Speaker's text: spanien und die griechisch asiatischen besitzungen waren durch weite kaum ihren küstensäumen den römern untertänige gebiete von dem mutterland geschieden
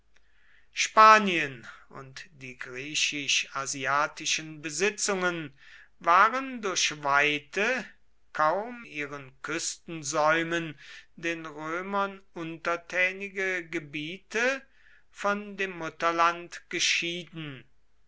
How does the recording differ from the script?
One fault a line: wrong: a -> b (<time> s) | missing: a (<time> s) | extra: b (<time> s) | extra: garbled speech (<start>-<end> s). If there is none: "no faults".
no faults